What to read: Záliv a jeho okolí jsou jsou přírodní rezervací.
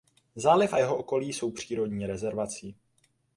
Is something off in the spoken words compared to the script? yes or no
yes